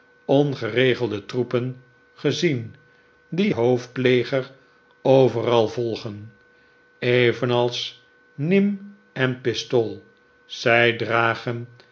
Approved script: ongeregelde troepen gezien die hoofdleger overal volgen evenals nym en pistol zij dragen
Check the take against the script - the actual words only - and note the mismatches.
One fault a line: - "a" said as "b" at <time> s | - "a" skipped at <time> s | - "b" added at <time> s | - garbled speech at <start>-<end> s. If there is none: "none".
none